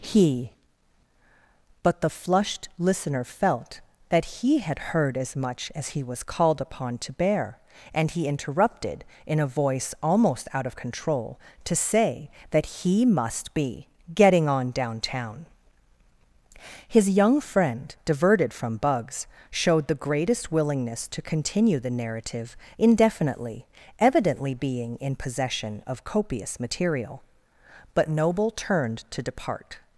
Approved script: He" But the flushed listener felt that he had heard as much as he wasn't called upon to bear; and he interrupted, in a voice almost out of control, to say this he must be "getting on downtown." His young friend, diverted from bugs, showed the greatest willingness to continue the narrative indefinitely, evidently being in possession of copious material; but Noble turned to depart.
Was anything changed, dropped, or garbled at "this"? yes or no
yes